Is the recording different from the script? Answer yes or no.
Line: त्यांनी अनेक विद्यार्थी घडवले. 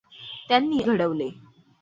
yes